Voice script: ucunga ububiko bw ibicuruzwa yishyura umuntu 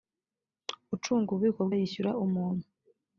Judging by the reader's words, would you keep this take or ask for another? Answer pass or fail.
fail